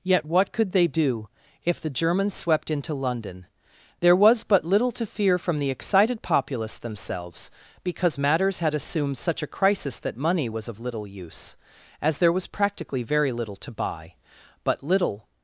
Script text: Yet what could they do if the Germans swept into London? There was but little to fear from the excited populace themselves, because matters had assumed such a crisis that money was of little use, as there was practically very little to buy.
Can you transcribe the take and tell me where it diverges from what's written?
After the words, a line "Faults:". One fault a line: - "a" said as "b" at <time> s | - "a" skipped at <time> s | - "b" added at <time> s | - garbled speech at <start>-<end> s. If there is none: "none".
Yet what could they do if the Germans swept into London? There was but little to fear from the excited populace themselves, because matters had assumed such a crisis that money was of little use, as there was practically very little to buy. But little
Faults:
- "But little" added at 14.6 s